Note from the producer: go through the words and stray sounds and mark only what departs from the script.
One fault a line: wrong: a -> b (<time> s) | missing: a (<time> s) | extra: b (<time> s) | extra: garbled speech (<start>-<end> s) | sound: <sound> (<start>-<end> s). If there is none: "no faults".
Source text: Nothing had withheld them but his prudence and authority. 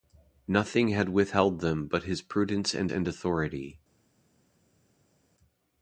extra: and (2.9 s)